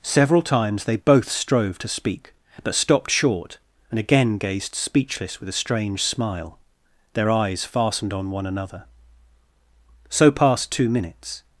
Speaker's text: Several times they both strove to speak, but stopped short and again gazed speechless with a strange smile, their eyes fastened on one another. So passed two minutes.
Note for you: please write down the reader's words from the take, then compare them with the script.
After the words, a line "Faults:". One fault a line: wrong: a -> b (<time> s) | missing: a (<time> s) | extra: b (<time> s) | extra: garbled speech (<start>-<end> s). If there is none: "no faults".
Several times they both strove to speak, but stopped short and again gazed speechless with a strange smile, their eyes fastened on one another. So passed two minutes.
Faults:
no faults